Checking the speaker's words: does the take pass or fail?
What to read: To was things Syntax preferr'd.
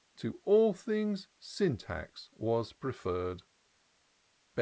fail